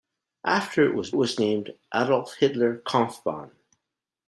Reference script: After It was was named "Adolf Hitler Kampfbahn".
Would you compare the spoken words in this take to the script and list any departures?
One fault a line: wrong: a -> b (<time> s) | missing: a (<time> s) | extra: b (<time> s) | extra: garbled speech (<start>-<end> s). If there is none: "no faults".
no faults